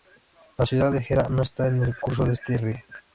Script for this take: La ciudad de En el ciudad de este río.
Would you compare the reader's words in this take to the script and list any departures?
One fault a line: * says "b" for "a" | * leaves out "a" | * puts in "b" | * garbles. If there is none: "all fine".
* puts in "Gera no está"
* says "curso" for "ciudad"